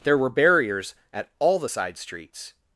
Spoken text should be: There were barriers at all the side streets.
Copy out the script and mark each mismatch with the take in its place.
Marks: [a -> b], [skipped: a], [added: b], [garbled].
There were barriers at all the side streets.